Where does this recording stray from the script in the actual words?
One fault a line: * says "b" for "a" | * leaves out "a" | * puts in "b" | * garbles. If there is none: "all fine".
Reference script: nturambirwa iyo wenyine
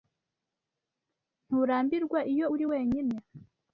* puts in "uri"